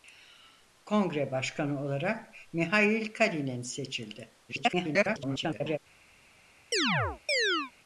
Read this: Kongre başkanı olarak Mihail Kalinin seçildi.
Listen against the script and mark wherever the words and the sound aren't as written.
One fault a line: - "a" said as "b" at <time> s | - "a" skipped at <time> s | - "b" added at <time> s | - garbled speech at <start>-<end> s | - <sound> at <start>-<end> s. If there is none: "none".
- garbled speech at 4.5-5.8 s
- chirp at 6.7-7.7 s